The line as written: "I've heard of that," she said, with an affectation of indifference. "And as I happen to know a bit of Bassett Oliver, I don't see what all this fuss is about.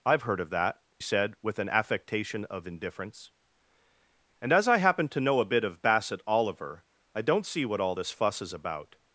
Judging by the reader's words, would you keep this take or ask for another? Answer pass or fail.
fail